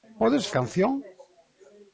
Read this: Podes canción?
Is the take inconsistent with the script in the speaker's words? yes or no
no